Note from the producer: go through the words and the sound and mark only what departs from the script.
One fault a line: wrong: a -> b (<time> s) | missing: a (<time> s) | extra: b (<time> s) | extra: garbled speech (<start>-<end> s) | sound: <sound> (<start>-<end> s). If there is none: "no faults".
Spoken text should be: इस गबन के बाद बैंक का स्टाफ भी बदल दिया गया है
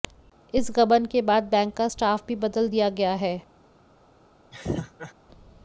sound: laugh (4.5-5.1 s)